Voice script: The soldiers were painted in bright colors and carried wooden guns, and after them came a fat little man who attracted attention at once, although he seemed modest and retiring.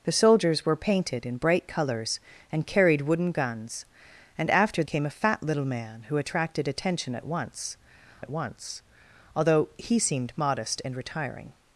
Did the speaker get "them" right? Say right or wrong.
wrong